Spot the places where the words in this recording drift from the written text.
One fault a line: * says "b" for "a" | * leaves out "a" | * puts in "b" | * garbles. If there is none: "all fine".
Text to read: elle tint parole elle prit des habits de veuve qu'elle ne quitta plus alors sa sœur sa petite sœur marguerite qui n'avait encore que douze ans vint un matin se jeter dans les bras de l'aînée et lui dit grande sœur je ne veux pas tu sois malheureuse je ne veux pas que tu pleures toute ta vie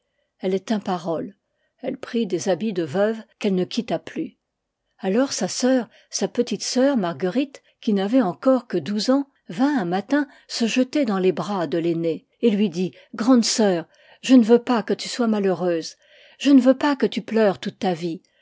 * puts in "que"